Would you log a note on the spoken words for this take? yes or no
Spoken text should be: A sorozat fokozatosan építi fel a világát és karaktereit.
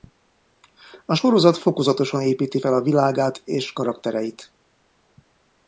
no